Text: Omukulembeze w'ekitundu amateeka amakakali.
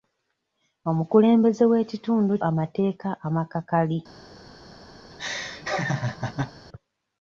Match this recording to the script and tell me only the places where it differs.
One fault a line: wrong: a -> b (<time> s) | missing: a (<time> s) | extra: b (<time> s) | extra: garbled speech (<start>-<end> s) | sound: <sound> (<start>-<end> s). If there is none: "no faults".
sound: laugh (5.1-6.5 s)